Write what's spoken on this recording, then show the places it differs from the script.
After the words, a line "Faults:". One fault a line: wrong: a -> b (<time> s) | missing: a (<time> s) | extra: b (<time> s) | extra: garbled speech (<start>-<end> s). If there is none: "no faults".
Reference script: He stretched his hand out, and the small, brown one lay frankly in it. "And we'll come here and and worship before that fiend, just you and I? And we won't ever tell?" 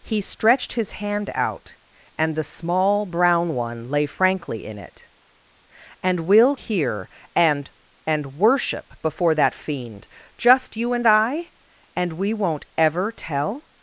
He stretched his hand out, and the small, brown one lay frankly in it. "And we'll here and and worship before that fiend, just you and I? And we won't ever tell?"
Faults:
missing: come (6.5 s)